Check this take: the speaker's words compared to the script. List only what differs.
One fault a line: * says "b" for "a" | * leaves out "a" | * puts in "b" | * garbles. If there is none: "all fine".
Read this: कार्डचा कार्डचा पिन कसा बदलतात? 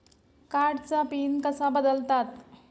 * leaves out "कार्डचा"